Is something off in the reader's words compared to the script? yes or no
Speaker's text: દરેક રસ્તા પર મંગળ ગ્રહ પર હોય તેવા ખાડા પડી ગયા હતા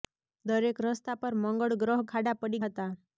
yes